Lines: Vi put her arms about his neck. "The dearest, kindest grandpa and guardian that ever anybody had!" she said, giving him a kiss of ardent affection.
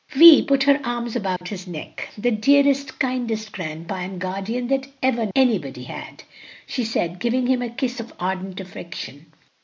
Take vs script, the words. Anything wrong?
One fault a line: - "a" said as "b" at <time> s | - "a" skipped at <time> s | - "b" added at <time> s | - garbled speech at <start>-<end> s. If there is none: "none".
none